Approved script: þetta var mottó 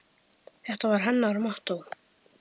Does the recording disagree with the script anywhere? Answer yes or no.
yes